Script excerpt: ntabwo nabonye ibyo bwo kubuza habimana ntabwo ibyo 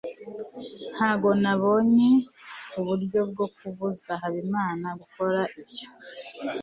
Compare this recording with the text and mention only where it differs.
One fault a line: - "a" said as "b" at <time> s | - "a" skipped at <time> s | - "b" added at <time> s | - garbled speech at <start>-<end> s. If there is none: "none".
- "ibyo" said as "uburyo" at 2.8 s
- "ntabwo" said as "gukora" at 5.0 s